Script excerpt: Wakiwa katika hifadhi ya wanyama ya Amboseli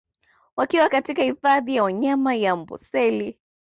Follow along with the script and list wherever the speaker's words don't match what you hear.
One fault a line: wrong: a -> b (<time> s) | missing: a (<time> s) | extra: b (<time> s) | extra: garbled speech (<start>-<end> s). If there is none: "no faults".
no faults